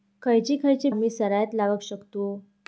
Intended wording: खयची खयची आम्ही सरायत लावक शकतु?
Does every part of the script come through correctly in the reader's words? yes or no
yes